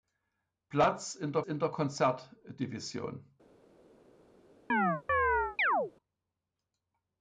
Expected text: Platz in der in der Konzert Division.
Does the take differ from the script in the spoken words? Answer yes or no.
no